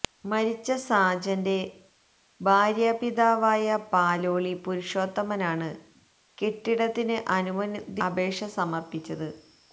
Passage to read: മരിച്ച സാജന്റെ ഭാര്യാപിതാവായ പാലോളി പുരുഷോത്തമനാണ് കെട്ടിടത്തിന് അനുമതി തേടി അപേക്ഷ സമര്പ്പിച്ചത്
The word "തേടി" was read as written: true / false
false